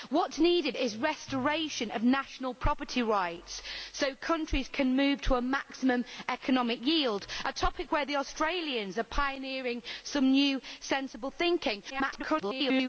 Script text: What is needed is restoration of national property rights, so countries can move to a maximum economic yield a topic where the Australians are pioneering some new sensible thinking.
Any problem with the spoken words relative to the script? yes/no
yes